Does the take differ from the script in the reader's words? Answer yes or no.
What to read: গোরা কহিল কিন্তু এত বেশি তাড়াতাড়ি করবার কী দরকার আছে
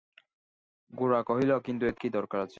yes